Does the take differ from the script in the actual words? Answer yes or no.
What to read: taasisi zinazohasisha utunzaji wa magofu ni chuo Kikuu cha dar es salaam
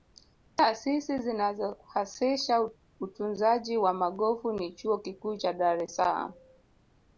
no